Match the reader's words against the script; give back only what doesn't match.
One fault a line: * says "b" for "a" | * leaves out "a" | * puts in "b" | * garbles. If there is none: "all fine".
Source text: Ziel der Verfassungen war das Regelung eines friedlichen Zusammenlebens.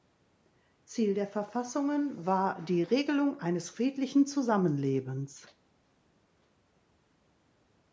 * says "die" for "das"